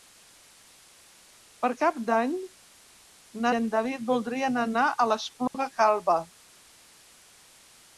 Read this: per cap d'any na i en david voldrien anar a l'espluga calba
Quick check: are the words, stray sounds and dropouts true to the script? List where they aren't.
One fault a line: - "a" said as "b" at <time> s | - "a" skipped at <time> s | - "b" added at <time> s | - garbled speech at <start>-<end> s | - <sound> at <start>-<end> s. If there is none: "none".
- dropout at 5.5-5.5 s